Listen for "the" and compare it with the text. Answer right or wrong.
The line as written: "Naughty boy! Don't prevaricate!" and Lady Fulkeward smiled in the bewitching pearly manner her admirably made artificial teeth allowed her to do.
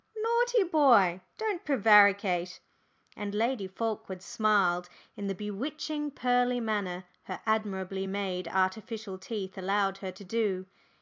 right